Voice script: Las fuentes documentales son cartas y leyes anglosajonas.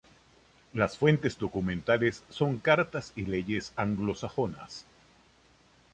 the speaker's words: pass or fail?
pass